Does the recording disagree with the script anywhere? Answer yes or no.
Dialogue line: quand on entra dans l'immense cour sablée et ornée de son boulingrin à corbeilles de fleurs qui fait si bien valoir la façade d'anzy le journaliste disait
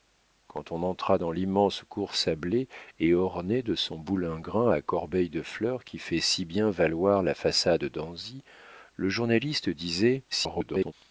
yes